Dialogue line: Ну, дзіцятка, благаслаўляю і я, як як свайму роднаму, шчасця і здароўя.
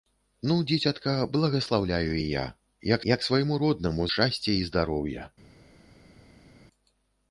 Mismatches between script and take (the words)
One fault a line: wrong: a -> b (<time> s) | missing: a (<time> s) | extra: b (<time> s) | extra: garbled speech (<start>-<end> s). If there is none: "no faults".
no faults